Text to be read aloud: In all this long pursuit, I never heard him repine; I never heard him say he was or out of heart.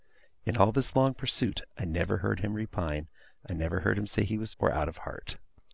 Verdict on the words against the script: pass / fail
pass